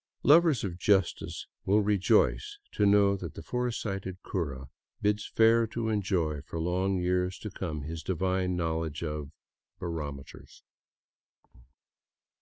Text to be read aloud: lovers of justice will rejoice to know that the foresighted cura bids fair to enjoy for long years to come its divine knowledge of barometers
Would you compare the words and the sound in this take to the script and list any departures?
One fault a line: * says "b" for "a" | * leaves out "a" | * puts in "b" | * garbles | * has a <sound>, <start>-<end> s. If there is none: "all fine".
* says "his" for "its"
* has a thud, 11.4-11.7 s